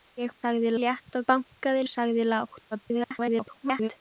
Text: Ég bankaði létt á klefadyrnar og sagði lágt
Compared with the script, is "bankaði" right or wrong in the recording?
wrong